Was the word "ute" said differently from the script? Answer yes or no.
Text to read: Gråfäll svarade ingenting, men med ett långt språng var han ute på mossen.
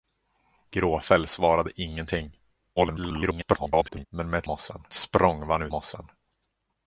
yes